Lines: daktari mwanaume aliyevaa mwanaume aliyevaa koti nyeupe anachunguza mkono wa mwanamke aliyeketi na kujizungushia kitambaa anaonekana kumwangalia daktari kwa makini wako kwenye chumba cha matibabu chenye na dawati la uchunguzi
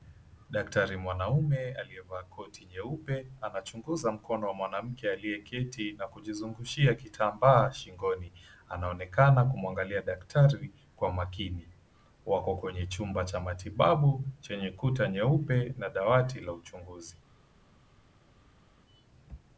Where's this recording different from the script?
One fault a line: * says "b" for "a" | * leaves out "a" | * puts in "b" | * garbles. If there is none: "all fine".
* leaves out "mwanaume aliyevaa"
* puts in "shingoni"
* puts in "kuta nyeupe"